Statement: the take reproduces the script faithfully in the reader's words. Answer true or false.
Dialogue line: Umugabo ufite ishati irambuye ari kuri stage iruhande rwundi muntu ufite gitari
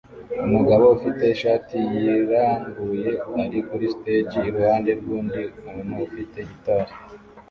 true